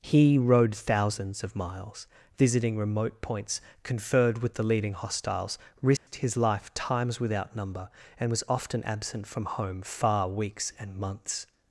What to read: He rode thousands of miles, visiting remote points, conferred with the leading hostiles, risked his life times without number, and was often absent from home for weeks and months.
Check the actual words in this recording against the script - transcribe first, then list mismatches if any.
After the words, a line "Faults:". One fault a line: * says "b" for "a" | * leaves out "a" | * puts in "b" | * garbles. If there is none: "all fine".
He rode thousands of miles, visiting remote points, conferred with the leading hostiles, risked his life times without number, and was often absent from home far weeks and months.
Faults:
* says "far" for "for"